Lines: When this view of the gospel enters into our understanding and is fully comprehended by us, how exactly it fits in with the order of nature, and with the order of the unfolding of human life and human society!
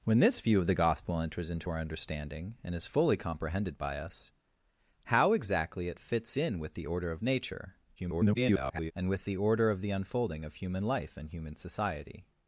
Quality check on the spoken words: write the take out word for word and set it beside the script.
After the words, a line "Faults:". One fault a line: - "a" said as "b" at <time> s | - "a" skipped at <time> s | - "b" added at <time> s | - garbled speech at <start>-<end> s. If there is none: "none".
When this view of the gospel enters into our understanding and is fully comprehended by us, how exactly it fits in with the order of nature, [garbled] and with the order of the unfolding of human life and human society!
Faults:
- garbled speech at 8.0-8.9 s